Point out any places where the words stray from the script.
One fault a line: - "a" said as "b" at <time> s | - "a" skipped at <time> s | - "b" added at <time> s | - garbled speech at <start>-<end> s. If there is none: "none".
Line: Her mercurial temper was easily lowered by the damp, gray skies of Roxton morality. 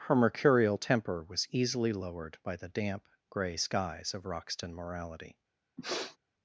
none